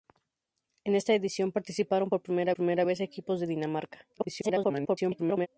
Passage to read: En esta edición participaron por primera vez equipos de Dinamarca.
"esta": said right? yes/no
yes